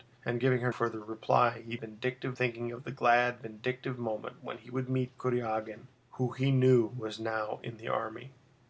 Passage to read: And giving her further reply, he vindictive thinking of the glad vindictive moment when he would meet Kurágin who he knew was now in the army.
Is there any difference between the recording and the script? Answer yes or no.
no